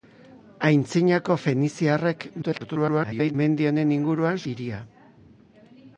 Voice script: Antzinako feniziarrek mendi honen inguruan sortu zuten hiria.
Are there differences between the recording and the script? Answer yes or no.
yes